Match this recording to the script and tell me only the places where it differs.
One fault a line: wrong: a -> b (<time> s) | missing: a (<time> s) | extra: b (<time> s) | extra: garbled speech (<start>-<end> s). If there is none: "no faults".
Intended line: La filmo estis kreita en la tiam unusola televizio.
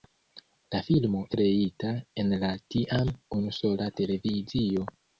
missing: estis (1.2 s)